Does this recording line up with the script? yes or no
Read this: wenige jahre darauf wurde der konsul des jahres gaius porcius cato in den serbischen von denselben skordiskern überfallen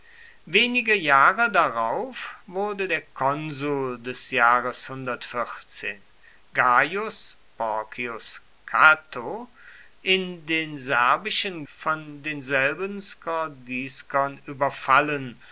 yes